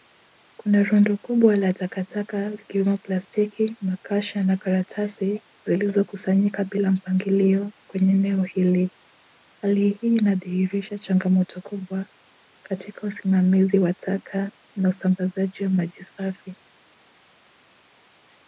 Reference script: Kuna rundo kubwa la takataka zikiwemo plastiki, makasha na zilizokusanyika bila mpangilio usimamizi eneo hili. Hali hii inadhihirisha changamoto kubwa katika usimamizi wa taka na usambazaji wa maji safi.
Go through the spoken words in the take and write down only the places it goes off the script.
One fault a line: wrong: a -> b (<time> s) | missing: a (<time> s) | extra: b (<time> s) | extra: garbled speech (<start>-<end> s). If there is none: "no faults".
extra: karatasi (4.6 s)
wrong: usimamizi -> kwenye (7.9 s)